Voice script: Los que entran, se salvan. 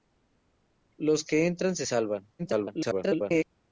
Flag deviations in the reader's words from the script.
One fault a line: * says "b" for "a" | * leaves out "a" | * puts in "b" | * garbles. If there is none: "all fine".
* garbles